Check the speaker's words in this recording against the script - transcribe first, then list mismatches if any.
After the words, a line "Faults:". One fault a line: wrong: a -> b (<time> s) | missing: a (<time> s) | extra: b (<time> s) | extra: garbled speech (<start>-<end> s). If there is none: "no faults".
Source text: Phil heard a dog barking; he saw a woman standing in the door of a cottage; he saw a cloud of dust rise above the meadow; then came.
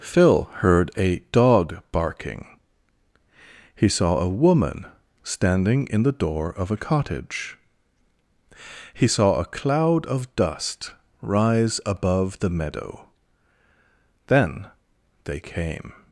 Phil heard a dog barking; he saw a woman standing in the door of a cottage; he saw a cloud of dust rise above the meadow; then they came.
Faults:
extra: they (15.2 s)